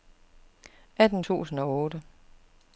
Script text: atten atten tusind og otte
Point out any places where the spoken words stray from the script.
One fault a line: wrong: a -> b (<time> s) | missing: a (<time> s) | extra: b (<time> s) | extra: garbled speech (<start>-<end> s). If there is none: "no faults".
missing: atten (1.2 s)